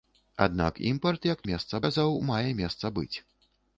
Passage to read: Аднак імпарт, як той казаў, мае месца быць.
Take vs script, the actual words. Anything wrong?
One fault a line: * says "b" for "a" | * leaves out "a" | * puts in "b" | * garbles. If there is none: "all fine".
* says "месца" for "той"